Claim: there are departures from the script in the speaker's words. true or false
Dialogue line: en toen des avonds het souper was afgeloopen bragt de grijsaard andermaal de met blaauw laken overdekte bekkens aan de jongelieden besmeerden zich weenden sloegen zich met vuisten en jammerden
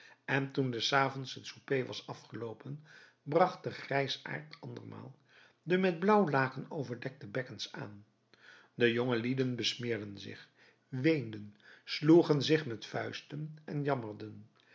false